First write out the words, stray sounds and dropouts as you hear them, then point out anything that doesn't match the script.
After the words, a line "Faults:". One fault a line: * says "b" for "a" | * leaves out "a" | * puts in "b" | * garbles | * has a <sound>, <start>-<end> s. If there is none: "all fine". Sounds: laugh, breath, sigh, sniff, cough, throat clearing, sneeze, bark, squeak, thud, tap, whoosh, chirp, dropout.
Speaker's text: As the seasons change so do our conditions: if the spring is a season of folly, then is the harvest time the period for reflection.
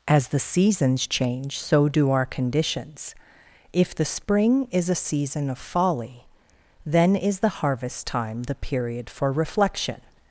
As the seasons change so do our conditions: if the spring is a season of folly, then is the harvest time the period for reflection.
Faults:
all fine